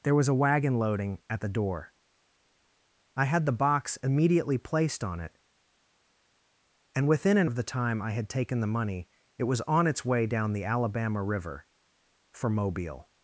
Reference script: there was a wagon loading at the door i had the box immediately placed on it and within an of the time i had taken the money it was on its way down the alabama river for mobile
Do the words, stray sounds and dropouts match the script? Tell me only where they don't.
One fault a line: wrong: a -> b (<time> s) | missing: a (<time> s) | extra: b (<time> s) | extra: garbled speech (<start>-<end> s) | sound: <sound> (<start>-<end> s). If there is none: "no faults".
no faults